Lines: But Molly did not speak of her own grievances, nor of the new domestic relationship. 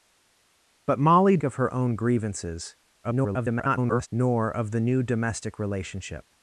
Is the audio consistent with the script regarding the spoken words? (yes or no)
no